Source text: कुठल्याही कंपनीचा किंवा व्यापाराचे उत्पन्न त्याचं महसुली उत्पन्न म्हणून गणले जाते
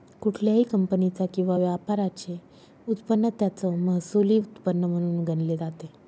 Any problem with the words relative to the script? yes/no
no